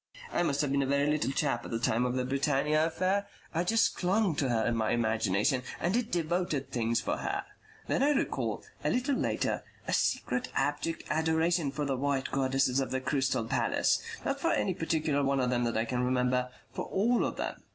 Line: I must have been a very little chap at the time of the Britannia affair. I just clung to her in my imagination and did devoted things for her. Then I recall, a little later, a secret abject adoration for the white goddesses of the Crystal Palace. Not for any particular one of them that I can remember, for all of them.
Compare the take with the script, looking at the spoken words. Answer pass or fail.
pass